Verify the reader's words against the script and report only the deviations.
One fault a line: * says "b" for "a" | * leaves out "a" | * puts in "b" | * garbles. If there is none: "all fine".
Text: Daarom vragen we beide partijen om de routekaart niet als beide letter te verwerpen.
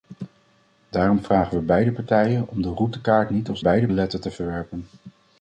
all fine